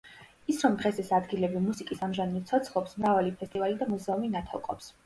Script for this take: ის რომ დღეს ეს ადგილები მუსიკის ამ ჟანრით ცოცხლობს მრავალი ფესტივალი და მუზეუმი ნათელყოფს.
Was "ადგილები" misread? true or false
false